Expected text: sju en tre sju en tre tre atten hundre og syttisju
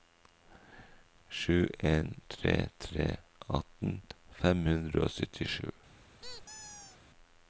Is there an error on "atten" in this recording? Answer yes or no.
yes